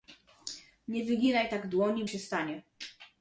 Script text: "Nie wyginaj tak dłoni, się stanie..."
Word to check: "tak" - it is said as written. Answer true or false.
true